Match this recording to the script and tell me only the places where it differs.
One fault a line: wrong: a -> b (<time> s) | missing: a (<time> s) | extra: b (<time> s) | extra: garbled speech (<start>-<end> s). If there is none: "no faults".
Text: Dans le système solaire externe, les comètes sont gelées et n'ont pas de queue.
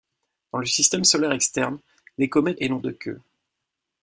missing: sont gelées (2.6 s)
missing: pas (2.8 s)